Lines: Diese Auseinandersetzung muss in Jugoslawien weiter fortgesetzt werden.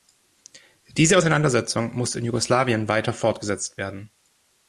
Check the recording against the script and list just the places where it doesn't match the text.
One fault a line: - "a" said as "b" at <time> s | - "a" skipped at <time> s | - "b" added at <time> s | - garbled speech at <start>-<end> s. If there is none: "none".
none